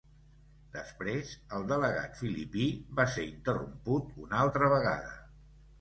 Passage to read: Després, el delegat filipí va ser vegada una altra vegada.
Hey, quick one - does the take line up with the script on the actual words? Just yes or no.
no